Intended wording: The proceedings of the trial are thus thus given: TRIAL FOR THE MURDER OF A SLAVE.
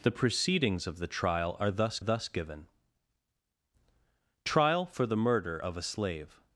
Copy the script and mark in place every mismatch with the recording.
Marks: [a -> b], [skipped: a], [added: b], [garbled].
The proceedings of the trial are thus thus given: TRIAL FOR THE MURDER OF A SLAVE.